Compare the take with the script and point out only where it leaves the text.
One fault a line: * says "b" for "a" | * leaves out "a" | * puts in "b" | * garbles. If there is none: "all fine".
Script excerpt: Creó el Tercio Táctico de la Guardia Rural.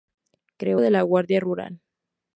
* leaves out "el Tercio Táctico"